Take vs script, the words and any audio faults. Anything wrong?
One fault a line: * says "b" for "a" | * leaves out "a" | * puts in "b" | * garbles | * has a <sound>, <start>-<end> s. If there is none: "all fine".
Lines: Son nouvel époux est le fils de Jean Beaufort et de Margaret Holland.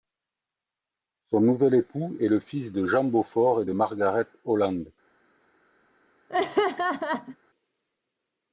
* has a laugh, 6.3-7.4 s